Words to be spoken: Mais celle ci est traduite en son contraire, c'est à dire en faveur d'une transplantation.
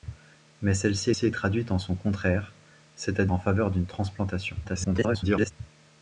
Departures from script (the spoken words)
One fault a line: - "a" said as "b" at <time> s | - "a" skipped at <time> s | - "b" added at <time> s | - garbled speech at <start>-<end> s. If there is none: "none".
- "ci" added at 1.1 s
- "dire" skipped at 3.3 s
- garbled speech at 4.6-5.5 s